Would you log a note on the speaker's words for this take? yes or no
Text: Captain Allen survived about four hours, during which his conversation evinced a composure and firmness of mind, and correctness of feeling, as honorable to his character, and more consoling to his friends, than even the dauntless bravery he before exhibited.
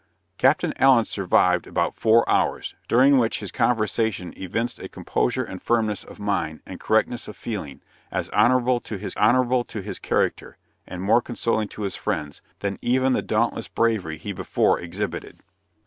yes